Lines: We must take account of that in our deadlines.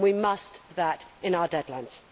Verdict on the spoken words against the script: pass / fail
fail